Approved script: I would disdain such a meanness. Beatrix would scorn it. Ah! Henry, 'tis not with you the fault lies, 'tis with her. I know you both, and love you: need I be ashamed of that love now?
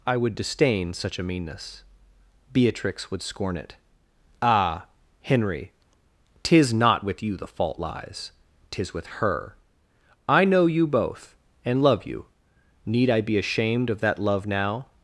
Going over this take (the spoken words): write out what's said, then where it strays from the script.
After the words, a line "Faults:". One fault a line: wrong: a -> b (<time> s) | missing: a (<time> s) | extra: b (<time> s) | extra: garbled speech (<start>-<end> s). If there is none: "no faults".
I would disdain such a meanness. Beatrix would scorn it. Ah! Henry, 'tis not with you the fault lies, 'tis with her. I know you both, and love you: need I be ashamed of that love now?
Faults:
no faults